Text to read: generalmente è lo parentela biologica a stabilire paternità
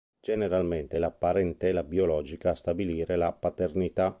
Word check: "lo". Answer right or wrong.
wrong